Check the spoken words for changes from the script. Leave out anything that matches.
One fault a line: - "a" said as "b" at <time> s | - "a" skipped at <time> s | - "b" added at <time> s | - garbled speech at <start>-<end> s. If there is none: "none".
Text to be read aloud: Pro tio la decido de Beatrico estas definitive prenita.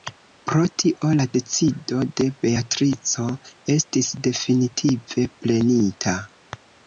- "estas" said as "estis" at 3.8 s